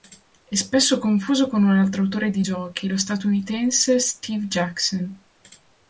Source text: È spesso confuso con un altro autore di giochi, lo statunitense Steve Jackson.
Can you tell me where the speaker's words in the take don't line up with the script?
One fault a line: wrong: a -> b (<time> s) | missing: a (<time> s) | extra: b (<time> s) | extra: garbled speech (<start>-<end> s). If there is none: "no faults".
no faults